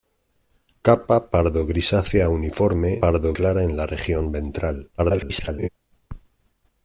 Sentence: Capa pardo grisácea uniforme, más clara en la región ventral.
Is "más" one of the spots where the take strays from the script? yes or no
yes